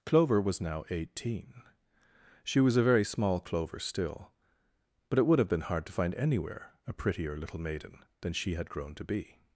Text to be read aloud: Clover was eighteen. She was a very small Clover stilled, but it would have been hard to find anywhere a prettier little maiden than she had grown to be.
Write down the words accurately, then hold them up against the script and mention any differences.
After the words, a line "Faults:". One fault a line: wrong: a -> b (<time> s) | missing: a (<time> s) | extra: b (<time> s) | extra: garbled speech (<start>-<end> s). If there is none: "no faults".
Clover was now eighteen. She was a very small Clover still, but it would have been hard to find anywhere a prettier little maiden than she had grown to be.
Faults:
extra: now (0.6 s)
wrong: stilled -> still (3.8 s)